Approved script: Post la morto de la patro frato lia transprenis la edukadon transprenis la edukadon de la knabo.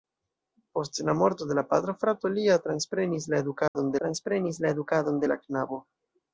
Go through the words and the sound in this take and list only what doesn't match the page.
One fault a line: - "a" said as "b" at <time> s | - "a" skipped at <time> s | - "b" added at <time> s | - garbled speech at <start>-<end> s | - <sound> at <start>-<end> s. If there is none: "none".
- dropout at 3.7-3.8 s